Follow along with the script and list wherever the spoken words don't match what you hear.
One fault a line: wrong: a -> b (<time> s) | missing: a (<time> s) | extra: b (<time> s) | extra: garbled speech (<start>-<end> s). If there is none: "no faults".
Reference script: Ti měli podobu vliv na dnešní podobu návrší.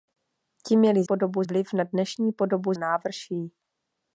no faults